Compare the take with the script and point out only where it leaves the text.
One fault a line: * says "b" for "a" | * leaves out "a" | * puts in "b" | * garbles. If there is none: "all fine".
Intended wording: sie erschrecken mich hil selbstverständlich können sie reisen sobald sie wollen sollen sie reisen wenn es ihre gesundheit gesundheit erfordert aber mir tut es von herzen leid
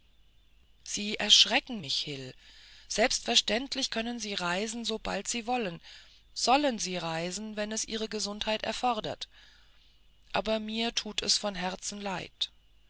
* leaves out "gesundheit"